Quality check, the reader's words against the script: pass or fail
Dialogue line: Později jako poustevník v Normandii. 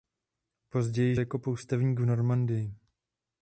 pass